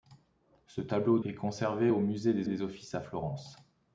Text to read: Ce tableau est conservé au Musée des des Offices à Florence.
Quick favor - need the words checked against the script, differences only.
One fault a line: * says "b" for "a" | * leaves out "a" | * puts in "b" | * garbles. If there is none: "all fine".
all fine